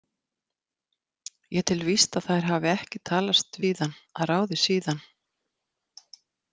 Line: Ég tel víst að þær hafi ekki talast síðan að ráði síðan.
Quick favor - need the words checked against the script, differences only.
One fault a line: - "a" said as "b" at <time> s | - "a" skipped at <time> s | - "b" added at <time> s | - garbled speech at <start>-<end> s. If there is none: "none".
none